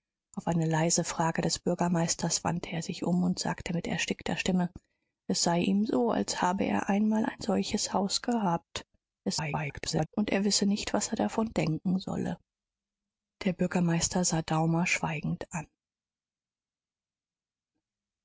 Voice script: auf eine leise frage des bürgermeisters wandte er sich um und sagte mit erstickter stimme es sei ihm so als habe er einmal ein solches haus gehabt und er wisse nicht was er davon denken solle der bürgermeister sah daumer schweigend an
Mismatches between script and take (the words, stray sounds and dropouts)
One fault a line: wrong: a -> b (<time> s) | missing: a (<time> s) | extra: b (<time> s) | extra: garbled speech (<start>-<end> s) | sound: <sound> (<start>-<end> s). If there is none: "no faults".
extra: garbled speech (9.2-10.1 s)